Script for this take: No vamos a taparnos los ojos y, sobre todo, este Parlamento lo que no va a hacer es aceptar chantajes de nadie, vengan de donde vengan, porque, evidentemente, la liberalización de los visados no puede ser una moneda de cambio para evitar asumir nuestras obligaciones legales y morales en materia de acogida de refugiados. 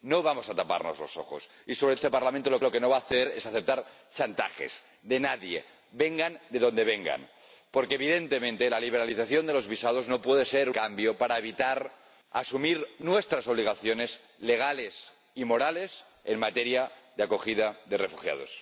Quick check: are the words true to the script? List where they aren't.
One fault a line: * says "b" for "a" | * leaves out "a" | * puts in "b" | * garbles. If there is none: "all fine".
* leaves out "todo"
* puts in "lo"
* leaves out "una moneda de"